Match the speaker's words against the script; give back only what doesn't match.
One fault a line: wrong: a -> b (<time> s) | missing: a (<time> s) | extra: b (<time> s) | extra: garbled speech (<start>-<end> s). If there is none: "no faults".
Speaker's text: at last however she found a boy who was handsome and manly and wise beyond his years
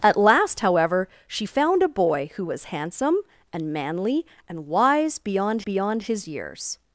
extra: beyond (5.6 s)